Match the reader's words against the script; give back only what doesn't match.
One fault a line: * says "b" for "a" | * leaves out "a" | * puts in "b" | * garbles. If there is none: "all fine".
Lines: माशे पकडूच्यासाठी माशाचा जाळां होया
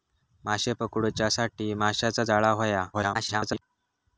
* garbles